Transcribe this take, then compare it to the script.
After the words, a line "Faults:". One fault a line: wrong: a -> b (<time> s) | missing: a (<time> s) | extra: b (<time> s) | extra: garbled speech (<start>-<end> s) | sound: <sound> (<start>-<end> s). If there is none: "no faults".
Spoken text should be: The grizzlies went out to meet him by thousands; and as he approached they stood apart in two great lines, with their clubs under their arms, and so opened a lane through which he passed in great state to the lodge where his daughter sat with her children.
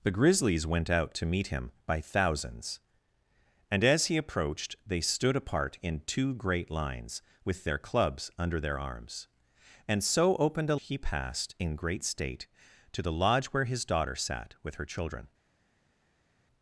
The grizzlies went out to meet him by thousands; and as he approached they stood apart in two great lines, with their clubs under their arms, and so opened a he passed in great state to the lodge where his daughter sat with her children.
Faults:
missing: lane through which (10.8 s)